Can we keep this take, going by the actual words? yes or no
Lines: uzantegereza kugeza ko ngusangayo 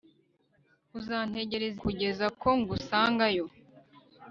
yes